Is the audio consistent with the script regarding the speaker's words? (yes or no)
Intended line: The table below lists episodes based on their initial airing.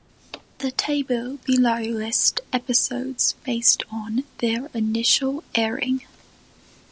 yes